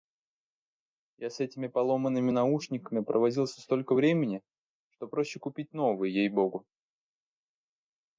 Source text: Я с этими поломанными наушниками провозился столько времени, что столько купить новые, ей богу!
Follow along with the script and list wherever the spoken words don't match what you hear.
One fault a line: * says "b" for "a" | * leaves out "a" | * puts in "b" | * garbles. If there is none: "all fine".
* says "проще" for "столько"